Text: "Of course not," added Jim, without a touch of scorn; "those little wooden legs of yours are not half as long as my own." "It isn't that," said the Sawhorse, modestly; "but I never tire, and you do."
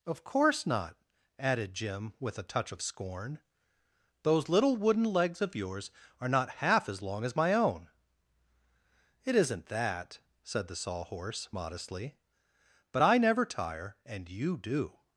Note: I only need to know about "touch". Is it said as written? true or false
true